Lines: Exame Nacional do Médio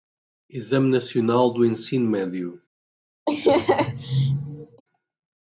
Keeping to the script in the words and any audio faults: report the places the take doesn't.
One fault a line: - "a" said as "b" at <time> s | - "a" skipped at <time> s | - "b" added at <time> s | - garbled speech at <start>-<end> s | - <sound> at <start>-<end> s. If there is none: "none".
- "Ensino" added at 1.6 s
- laugh at 3.3-4.8 s